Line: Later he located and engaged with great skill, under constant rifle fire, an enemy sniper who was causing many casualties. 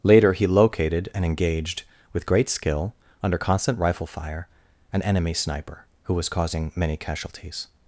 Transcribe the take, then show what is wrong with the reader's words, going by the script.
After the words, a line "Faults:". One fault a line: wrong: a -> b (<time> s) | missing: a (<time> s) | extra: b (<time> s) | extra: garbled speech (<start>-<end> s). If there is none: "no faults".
Later he located and engaged with great skill, under constant rifle fire, an enemy sniper who was causing many casualties.
Faults:
no faults